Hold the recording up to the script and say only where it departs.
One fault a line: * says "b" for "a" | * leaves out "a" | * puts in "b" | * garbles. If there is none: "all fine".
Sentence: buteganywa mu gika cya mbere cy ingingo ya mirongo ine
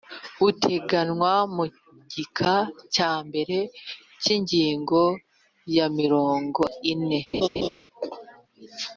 all fine